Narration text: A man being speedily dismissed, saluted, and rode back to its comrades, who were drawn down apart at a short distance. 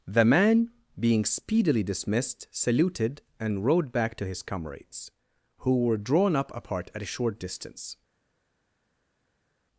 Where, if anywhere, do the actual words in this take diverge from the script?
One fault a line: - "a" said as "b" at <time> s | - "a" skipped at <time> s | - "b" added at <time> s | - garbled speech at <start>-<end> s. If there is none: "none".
- "A" said as "The" at 0.1 s
- "its" said as "his" at 4.2 s
- "down" said as "up" at 6.3 s